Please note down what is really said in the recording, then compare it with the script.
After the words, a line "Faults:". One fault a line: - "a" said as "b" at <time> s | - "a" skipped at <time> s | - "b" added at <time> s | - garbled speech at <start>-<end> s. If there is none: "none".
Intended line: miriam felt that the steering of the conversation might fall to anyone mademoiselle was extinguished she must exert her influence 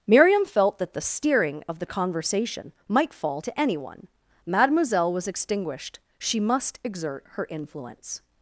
miriam felt that the steering of the conversation might fall to anyone mademoiselle was extinguished she must exert her influence
Faults:
none